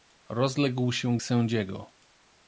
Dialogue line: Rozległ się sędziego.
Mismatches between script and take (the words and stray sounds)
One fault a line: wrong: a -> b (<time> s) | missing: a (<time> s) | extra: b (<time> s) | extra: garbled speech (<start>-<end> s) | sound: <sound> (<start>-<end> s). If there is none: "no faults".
no faults